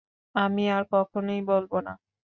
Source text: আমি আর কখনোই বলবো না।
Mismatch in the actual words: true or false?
false